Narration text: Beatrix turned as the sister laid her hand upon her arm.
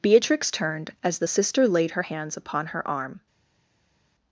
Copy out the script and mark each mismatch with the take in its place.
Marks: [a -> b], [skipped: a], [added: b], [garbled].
Beatrix turned as the sister laid her [hand -> hands] upon her arm.